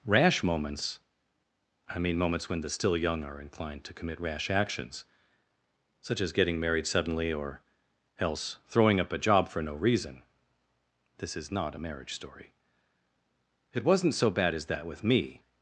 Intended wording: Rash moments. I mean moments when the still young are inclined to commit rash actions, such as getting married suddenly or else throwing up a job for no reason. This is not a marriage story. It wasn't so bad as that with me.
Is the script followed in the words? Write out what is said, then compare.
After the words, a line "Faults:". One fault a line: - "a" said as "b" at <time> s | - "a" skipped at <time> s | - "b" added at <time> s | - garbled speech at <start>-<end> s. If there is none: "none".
Rash moments. I mean moments when the still young are inclined to commit rash actions, such as getting married suddenly or else throwing up a job for no reason. This is not a marriage story. It wasn't so bad as that with me.
Faults:
none